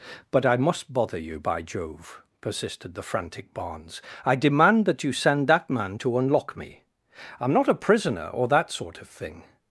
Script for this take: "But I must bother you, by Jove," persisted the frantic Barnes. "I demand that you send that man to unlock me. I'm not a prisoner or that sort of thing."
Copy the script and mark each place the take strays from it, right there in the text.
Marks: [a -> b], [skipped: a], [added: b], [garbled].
"But I must bother you, by Jove," persisted the frantic Barnes. "I demand that you send that man to unlock me. I'm not a prisoner or that sort of thing."